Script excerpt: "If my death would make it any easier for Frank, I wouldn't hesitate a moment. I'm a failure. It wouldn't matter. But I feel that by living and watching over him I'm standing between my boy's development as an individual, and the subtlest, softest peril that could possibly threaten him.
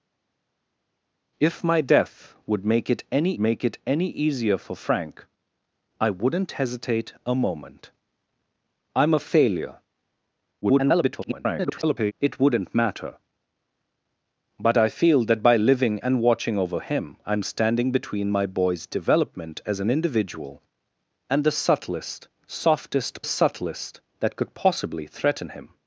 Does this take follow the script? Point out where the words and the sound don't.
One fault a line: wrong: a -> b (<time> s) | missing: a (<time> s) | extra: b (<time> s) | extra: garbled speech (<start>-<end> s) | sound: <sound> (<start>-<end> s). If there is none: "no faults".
extra: make it any (3.4 s)
extra: garbled speech (10.6-12.1 s)
wrong: peril -> subtlest (23.2 s)